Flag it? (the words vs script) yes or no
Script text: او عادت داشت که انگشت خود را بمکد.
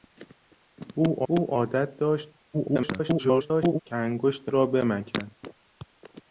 yes